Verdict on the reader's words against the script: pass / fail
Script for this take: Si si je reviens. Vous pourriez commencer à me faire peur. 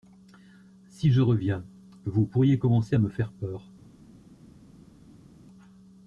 fail